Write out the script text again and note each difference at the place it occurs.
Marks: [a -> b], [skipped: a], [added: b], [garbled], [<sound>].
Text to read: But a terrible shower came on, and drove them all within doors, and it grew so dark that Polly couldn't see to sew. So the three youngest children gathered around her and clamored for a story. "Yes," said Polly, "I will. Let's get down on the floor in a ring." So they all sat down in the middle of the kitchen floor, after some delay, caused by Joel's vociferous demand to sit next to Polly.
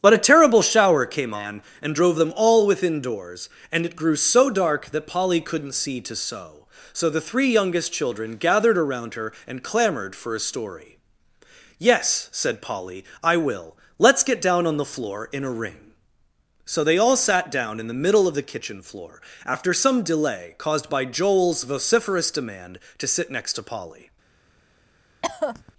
But a terrible shower came on, and drove them all within doors, and it grew so dark that Polly couldn't see to sew. So the three youngest children gathered around her and clamored for a story. "Yes," said Polly, "I will. Let's get down on the floor in a ring." So they all sat down in the middle of the kitchen floor, after some delay, caused by Joel's vociferous demand to sit next to Polly. [cough]